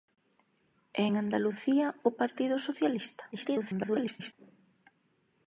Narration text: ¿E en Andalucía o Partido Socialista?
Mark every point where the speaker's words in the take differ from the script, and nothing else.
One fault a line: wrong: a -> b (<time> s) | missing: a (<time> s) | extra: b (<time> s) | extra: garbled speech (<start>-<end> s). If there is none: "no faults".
extra: garbled speech (3.3-4.3 s)